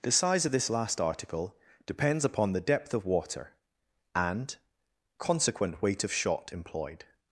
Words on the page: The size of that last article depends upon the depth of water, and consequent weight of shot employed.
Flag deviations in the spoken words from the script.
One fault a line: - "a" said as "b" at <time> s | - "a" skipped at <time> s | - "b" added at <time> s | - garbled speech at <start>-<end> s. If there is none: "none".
- "that" said as "this" at 0.5 s